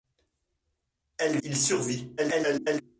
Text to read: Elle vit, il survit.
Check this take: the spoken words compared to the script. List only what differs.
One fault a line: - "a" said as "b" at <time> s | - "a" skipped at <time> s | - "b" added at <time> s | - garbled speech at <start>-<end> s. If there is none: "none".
- "vit" skipped at 1.4 s
- garbled speech at 2.2-2.8 s